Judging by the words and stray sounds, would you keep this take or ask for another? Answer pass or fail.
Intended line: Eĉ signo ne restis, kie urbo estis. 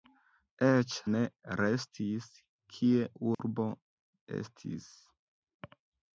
fail